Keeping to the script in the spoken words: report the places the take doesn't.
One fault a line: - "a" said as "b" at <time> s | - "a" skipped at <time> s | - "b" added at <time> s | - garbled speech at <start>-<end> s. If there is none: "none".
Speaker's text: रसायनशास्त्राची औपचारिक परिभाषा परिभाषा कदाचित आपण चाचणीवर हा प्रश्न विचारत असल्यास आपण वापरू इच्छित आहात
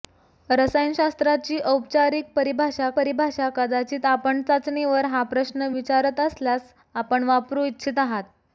none